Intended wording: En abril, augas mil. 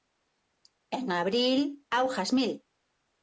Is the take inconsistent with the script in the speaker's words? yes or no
no